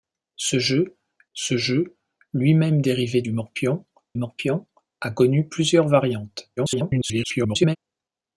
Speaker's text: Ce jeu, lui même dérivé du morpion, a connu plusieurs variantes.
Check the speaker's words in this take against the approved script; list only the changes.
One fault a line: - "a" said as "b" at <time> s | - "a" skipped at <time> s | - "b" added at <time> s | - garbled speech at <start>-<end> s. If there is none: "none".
- "ce jeu" added at 1.3 s
- "morpion" added at 4.2 s
- garbled speech at 6.6-7.8 s